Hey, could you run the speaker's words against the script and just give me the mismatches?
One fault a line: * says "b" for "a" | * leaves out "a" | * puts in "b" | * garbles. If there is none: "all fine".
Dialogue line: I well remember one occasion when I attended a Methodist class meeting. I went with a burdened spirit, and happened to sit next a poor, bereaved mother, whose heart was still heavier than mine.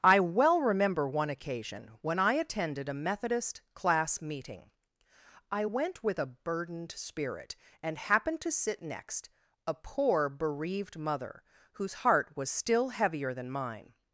all fine